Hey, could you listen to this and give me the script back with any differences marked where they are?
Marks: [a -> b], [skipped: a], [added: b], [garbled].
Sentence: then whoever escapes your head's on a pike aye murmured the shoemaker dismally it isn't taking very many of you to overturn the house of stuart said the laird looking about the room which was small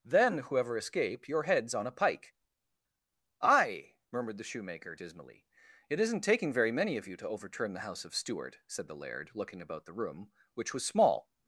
then whoever [escapes -> escape] your head's on a pike aye murmured the shoemaker dismally it isn't taking very many of you to overturn the house of stuart said the laird looking about the room which was small